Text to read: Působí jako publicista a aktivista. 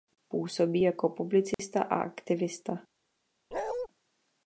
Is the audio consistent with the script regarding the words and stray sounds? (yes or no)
no